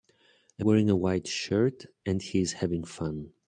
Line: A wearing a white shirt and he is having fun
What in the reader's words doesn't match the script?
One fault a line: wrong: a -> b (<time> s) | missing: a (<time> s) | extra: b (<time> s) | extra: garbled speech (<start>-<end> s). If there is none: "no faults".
no faults